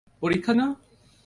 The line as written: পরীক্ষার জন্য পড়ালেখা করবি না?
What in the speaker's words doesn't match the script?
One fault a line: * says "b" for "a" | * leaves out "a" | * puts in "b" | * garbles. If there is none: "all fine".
* leaves out "জন্য পড়ালেখা করবি"